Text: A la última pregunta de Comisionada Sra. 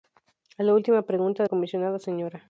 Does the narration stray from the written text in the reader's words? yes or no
no